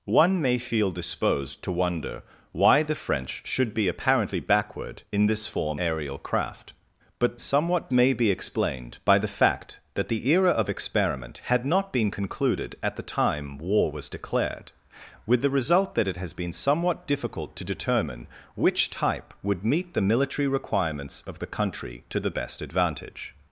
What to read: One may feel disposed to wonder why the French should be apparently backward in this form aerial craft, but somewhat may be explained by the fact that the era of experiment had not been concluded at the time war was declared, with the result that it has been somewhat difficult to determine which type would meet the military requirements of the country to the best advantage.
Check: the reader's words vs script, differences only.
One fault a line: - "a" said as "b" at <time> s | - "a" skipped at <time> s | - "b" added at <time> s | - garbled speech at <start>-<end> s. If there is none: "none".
none